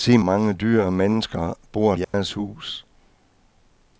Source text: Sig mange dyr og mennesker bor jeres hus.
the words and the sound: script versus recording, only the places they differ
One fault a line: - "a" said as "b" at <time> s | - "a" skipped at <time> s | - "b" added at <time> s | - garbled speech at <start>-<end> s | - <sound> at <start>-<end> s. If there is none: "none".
- dropout at 2.0-2.1 s